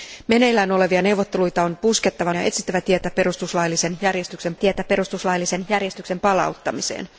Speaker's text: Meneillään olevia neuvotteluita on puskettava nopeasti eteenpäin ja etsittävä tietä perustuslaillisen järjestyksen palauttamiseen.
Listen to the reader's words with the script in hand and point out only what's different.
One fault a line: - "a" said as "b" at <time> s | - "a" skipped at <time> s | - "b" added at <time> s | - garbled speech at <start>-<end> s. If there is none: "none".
- "nopeasti eteenpäin ja etsittävä" said as "ja etsittävä tietä perustuslaillisen järjestyksen" at 2.3 s